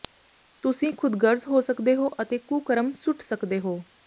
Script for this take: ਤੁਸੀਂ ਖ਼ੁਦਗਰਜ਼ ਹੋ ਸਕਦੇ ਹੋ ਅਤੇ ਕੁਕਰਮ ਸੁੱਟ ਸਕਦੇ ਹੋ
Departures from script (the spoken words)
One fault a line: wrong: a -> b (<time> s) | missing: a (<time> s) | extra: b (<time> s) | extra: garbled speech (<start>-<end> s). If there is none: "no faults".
no faults